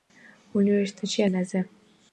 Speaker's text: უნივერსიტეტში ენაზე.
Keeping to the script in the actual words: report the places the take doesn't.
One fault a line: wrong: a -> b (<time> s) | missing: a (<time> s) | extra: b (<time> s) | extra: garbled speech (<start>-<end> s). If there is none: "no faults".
no faults